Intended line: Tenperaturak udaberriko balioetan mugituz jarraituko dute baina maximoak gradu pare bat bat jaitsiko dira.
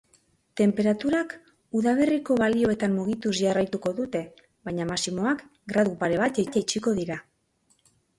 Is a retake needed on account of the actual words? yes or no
no